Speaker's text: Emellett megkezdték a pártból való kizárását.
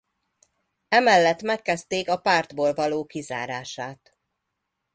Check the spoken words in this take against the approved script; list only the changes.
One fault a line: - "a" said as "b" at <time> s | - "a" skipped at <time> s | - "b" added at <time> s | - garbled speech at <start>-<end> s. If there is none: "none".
none